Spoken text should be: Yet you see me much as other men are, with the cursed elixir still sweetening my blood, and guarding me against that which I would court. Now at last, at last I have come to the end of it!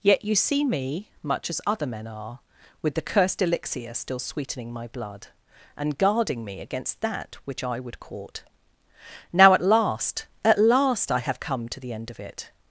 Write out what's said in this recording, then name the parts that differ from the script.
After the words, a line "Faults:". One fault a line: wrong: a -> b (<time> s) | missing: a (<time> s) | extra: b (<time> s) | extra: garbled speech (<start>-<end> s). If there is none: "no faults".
Yet you see me much as other men are, with the cursed elixir still sweetening my blood, and guarding me against that which I would court. Now at last, at last I have come to the end of it!
Faults:
no faults